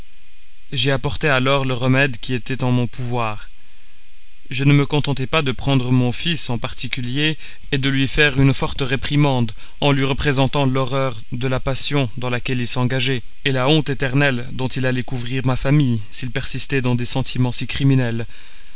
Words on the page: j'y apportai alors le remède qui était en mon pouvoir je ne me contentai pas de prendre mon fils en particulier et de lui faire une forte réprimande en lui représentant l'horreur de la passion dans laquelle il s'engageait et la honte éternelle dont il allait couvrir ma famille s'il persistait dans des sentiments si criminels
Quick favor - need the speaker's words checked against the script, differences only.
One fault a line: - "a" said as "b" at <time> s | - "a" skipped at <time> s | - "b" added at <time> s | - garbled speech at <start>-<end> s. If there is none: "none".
none